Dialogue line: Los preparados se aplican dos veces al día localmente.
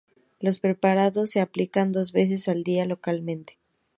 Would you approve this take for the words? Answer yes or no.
yes